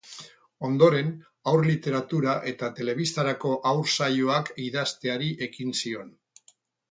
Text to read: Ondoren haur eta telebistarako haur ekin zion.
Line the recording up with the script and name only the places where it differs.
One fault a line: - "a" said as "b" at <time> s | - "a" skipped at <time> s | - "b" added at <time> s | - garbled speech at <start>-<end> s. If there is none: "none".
- "literatura" added at 1.7 s
- "saioak idazteari" added at 4.0 s